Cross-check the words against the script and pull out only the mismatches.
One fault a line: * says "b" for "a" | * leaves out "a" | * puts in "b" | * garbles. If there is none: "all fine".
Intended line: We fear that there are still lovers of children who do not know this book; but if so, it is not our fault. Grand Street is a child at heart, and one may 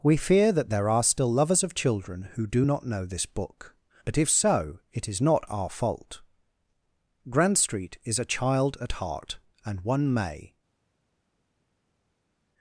all fine